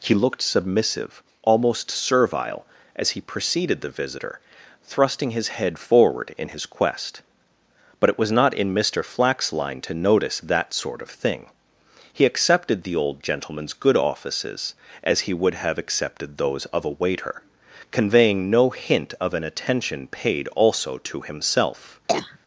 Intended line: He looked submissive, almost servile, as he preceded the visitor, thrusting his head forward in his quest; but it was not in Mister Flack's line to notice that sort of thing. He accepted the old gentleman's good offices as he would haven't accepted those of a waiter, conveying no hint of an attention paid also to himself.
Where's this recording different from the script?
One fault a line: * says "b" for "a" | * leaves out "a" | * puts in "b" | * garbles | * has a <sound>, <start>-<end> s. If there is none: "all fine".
* says "have" for "haven't"
* has a cough, 22.1-22.4 s